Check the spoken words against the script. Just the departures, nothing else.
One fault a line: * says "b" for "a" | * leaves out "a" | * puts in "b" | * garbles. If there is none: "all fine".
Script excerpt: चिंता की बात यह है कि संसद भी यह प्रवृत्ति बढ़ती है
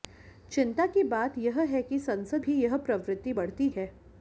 all fine